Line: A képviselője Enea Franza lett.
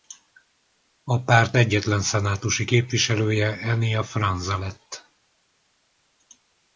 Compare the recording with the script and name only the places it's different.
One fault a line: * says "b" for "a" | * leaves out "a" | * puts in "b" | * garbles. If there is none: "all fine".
* puts in "párt egyetlen szenátusi"